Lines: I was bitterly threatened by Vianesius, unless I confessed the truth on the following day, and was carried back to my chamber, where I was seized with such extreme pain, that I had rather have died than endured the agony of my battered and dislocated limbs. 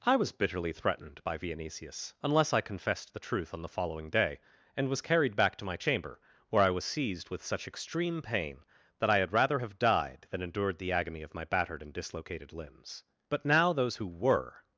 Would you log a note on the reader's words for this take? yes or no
yes